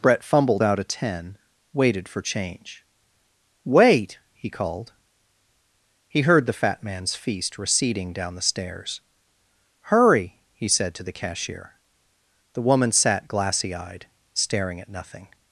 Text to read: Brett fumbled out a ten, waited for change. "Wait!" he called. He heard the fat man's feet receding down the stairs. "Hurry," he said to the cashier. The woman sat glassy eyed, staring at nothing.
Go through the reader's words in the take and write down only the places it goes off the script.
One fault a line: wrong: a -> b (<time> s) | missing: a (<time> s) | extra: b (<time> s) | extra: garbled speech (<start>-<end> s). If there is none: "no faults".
wrong: feet -> feast (7.2 s)